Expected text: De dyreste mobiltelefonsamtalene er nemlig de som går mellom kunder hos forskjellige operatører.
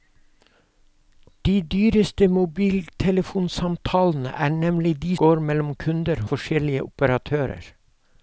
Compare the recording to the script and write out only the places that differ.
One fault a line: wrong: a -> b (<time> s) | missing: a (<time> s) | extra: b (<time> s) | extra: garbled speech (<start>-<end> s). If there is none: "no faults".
missing: som (5.2 s)
missing: hos (6.2 s)